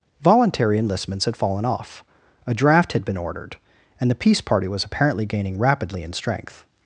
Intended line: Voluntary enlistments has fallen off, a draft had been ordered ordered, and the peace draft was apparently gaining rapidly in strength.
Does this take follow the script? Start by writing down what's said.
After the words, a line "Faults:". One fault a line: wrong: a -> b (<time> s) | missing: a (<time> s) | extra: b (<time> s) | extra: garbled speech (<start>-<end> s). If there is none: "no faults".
Voluntary enlistments had fallen off, a draft had been ordered, and the peace party was apparently gaining rapidly in strength.
Faults:
wrong: has -> had (1.2 s)
missing: ordered (3.6 s)
wrong: draft -> party (4.4 s)